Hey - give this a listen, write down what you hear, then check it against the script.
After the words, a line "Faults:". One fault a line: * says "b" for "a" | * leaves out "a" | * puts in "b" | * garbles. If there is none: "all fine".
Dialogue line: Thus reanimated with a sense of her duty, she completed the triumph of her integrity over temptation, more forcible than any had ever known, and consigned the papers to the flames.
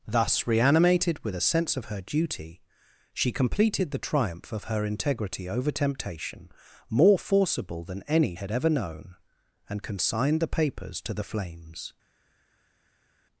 Thus reanimated with a sense of her duty, she completed the triumph of her integrity over temptation, more forcible than any had ever known, and consigned the papers to the flames.
Faults:
all fine